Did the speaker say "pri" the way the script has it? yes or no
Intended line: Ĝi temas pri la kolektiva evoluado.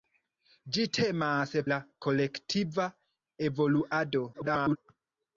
no